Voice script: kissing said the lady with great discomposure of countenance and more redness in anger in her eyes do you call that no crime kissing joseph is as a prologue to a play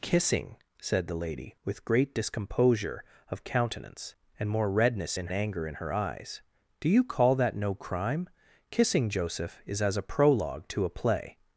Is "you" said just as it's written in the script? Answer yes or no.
yes